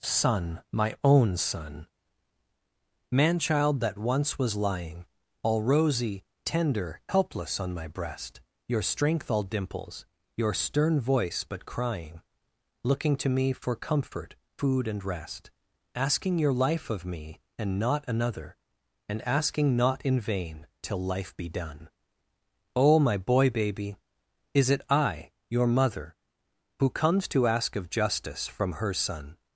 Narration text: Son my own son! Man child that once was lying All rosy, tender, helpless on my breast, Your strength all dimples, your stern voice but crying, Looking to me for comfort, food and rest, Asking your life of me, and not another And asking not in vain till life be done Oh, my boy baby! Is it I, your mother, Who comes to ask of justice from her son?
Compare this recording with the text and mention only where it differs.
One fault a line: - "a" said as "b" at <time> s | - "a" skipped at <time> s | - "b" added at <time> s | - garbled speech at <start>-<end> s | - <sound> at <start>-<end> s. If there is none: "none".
none